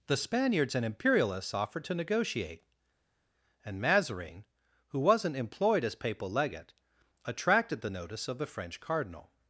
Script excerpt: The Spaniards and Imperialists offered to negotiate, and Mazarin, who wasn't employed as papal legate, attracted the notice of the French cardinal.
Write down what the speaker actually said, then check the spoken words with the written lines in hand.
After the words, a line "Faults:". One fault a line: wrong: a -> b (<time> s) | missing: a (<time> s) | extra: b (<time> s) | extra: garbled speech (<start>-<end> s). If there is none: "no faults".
The Spaniards and Imperialists offered to negotiate, and Mazarin, who wasn't employed as papal legate, attracted the notice of the French cardinal.
Faults:
no faults